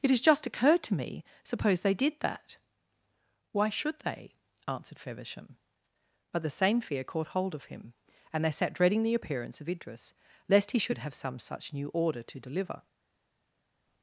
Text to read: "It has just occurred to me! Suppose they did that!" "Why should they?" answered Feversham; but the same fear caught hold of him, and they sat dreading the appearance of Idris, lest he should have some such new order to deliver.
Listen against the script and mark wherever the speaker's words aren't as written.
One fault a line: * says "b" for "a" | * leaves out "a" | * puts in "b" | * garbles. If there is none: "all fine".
all fine